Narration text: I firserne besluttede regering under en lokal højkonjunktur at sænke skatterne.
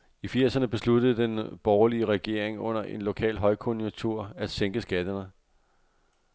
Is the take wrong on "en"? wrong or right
right